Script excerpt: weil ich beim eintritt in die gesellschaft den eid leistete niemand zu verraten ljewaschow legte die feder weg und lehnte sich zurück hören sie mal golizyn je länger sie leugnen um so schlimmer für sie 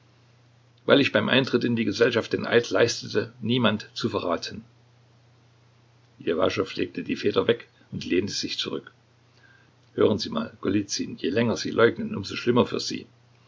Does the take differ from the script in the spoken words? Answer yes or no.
no